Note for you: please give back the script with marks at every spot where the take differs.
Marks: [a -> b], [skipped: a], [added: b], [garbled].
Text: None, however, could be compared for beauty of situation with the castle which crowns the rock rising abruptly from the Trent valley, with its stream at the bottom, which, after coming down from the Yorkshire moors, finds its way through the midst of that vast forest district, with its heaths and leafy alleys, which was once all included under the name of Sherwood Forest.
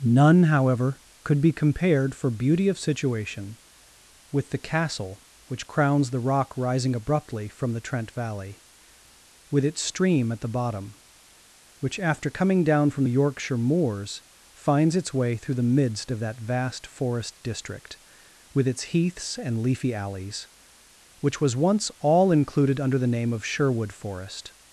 None, however, could be compared for beauty of situation with the castle which crowns the rock rising abruptly from the Trent valley, with its stream at the bottom, which, after coming down from the Yorkshire moors, finds its way through the midst of that vast forest district, with its heaths and leafy alleys, which was once all included under the name of Sherwood Forest.